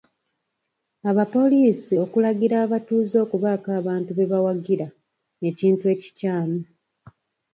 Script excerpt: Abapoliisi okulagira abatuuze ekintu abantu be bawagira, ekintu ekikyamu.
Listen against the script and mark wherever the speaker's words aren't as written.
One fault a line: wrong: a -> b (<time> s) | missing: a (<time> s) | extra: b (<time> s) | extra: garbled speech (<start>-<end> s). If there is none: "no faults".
wrong: ekintu -> okubaako (3.3 s)